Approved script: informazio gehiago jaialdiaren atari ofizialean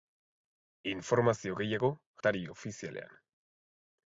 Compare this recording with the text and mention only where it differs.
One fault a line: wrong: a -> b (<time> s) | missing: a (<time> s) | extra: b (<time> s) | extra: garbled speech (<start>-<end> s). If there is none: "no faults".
missing: jaialdiaren (1.9 s)